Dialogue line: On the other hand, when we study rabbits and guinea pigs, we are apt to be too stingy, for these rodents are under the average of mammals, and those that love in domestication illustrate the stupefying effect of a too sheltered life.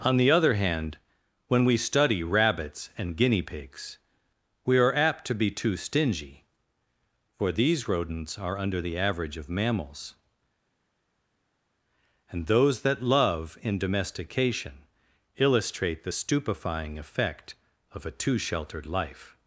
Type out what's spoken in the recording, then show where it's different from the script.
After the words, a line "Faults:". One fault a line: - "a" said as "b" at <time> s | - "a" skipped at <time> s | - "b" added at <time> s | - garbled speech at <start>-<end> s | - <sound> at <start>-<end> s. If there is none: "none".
On the other hand, when we study rabbits and guinea pigs, we are apt to be too stingy, for these rodents are under the average of mammals, and those that love in domestication illustrate the stupefying effect of a too sheltered life.
Faults:
none